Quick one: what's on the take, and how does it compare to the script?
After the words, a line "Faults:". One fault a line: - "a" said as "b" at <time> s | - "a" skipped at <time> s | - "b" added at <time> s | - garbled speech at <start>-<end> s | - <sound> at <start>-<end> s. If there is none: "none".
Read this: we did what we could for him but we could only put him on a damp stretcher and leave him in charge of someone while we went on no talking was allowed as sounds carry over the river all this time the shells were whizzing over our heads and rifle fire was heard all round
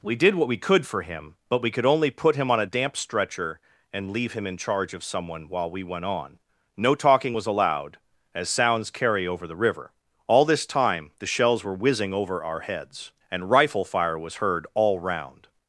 we did what we could for him but we could only put him on a damp stretcher and leave him in charge of someone while we went on no talking was allowed as sounds carry over the river all this time the shells were whizzing over our heads and rifle fire was heard all round
Faults:
none